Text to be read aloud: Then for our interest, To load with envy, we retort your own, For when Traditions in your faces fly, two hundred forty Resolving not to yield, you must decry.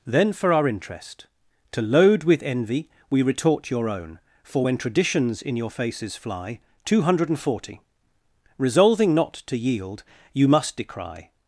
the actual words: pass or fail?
pass